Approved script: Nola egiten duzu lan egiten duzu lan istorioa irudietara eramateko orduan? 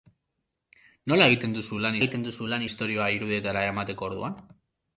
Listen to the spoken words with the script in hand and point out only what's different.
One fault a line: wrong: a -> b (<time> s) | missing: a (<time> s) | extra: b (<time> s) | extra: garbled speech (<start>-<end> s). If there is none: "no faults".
no faults